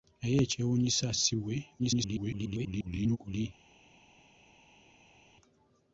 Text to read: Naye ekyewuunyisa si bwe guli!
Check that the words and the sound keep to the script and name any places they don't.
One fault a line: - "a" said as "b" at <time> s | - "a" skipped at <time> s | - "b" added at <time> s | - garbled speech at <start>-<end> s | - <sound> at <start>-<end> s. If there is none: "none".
- garbled speech at 1.8-3.2 s